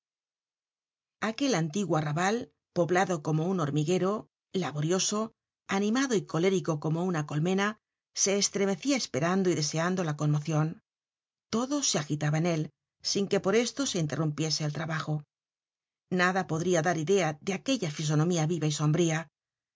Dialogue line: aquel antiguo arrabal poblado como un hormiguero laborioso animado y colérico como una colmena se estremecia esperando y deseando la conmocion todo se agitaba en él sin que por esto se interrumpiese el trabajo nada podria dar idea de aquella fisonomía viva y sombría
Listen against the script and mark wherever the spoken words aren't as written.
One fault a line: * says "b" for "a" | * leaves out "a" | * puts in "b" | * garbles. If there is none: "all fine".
all fine